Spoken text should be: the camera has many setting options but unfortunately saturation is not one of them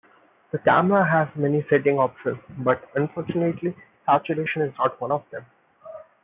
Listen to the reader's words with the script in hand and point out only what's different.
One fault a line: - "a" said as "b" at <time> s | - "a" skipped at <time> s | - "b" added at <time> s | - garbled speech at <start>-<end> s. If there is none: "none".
none